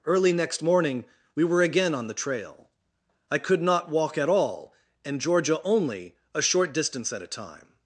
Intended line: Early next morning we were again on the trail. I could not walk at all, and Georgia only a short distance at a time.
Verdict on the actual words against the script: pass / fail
pass